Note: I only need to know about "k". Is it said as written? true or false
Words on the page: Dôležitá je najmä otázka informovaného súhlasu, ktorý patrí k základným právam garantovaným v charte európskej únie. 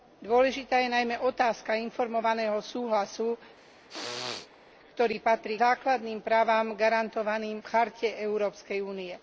false